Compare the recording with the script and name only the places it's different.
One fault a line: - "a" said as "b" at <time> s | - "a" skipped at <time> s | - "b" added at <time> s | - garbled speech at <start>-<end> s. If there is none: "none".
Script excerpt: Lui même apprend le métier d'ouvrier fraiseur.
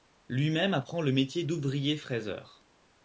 none